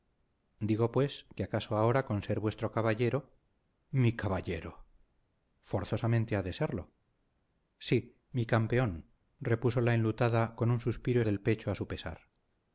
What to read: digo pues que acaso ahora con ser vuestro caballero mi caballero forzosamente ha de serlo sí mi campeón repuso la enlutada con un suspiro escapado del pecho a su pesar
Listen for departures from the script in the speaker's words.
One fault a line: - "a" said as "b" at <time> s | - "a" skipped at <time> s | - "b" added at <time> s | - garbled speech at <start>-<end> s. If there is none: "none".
- "escapado" skipped at 11.2 s